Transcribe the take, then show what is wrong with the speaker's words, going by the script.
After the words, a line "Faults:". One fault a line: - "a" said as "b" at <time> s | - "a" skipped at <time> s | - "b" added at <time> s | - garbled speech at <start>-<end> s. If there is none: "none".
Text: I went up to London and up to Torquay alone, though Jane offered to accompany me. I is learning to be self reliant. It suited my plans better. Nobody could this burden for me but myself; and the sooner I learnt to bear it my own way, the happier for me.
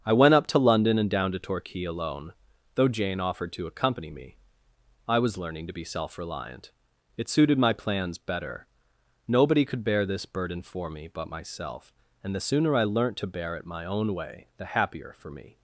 I went up to London and down to Torquay alone, though Jane offered to accompany me. I was learning to be self reliant. It suited my plans better. Nobody could bear this burden for me but myself; and the sooner I learnt to bear it my own way, the happier for me.
Faults:
- "up" said as "down" at 1.1 s
- "is" said as "was" at 5.2 s
- "bear" added at 9.8 s